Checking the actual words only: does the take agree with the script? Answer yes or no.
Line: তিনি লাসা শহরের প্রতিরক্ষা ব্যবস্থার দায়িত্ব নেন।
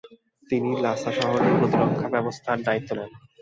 yes